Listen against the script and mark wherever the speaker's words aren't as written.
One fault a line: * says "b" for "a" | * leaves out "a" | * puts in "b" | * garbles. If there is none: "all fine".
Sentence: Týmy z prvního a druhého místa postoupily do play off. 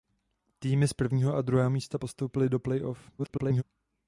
* garbles